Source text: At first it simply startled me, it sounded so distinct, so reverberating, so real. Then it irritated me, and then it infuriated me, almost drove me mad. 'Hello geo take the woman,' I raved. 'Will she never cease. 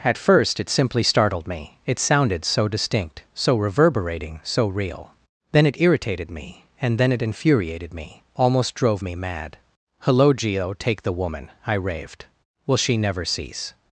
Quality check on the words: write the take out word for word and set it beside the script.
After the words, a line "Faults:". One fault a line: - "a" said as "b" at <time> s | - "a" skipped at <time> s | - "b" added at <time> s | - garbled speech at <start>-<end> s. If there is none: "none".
At first it simply startled me, it sounded so distinct, so reverberating, so real. Then it irritated me, and then it infuriated me, almost drove me mad. 'Hello geo take the woman,' I raved. 'Will she never cease.
Faults:
none